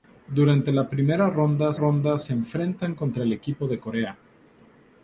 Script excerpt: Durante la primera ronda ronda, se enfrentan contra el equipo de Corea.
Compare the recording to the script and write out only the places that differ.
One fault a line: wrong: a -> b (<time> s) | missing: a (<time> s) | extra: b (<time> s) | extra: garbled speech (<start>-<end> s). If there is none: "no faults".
no faults